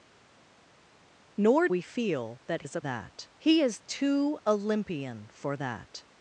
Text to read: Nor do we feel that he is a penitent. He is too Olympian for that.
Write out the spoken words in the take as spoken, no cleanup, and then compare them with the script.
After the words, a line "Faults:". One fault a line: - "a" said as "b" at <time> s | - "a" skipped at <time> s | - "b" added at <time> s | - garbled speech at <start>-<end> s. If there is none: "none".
Nor we feel that is a that. He is too Olympian for that.
Faults:
- "do" skipped at 1.7 s
- "he" skipped at 2.6 s
- "penitent" said as "that" at 2.8 s